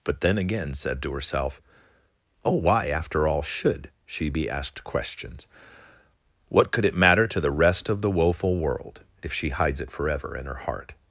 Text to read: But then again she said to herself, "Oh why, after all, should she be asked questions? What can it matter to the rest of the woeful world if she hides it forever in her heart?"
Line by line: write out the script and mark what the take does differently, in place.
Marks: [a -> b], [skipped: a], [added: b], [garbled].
But then again [skipped: she] said to herself, "Oh why, after all, should she be asked questions? What [can -> could] it matter to the rest of the woeful world if she hides it forever in her heart?"